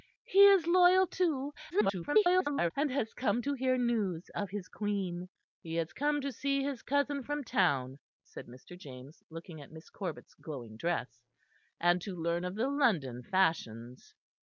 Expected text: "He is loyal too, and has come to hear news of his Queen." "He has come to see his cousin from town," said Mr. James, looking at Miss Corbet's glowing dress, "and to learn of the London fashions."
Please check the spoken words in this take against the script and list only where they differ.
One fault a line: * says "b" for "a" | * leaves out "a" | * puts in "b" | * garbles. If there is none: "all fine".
* garbles